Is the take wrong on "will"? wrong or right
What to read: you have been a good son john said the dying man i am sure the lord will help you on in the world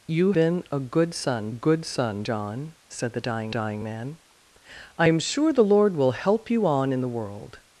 right